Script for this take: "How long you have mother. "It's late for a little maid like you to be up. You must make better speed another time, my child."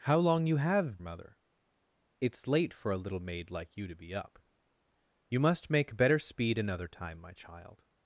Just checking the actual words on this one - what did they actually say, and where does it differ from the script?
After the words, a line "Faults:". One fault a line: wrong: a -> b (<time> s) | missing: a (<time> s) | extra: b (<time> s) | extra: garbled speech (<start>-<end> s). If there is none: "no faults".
"How long you have mother. "It's late for a little maid like you to be up. You must make better speed another time, my child."
Faults:
no faults